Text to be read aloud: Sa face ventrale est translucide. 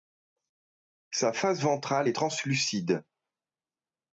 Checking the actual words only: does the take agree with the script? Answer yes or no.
yes